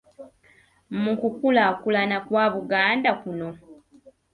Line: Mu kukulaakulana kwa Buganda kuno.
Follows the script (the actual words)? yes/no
yes